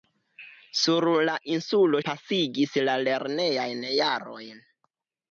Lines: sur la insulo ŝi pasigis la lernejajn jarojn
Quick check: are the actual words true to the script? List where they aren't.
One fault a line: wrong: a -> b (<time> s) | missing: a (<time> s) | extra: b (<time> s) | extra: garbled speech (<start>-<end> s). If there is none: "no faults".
missing: ŝi (2.0 s)